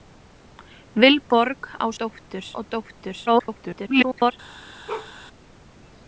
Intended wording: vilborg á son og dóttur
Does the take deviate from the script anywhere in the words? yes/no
yes